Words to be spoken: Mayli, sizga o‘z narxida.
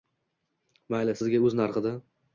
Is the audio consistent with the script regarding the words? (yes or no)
yes